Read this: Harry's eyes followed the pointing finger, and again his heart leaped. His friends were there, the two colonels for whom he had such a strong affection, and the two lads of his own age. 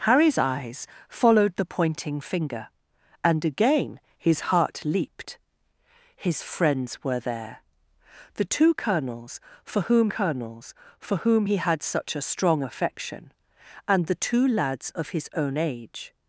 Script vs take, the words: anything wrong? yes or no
yes